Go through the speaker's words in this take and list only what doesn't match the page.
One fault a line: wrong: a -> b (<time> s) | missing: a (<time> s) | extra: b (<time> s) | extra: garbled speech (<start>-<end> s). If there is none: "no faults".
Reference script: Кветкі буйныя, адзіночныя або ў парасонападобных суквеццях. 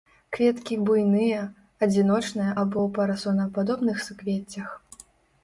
no faults